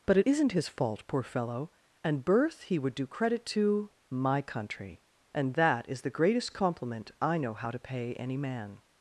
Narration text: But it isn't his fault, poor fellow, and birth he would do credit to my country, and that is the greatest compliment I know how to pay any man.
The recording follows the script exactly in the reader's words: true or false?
true